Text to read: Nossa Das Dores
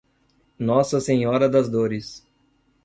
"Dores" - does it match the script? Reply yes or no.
yes